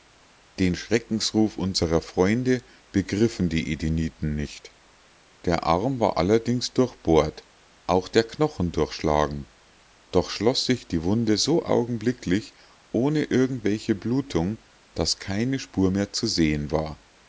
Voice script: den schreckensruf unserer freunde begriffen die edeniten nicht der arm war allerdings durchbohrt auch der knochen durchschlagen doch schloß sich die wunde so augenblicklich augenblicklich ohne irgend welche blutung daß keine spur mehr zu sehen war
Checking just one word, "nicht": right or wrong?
right